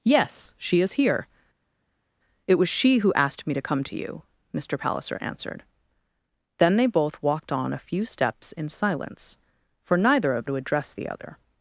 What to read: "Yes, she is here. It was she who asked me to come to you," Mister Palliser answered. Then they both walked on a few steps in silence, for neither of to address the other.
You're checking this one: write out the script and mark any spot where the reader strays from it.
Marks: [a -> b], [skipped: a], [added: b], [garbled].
"Yes, she is here. It was she who asked me to come to you," Mister Palliser answered. Then they both walked on a few steps in silence, for neither of to address the other.